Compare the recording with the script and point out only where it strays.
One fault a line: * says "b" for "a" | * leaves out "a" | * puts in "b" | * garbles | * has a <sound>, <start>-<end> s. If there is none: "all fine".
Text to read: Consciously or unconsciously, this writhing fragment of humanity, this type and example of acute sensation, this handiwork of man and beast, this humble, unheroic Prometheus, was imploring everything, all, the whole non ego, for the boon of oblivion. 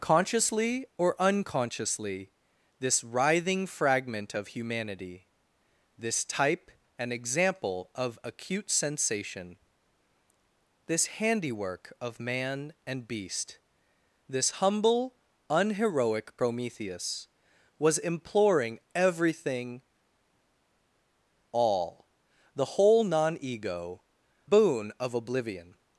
* leaves out "for the"